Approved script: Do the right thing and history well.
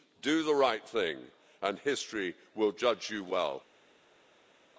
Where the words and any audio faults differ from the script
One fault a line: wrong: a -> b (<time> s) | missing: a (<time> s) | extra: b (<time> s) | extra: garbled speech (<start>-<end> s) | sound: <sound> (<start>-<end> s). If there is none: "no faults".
extra: will judge you (2.5 s)